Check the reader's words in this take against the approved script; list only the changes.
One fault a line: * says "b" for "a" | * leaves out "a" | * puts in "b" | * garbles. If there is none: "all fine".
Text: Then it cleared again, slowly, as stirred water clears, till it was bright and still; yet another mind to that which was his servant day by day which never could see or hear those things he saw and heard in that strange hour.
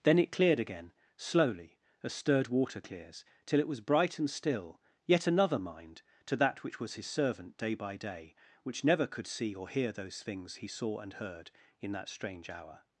all fine